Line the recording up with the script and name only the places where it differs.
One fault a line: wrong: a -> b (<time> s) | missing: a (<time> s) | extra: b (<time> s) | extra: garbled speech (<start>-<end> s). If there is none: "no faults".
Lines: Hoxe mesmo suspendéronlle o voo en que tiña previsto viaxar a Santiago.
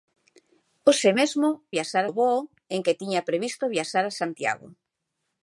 wrong: suspendéronlle -> viaxar (1.7 s)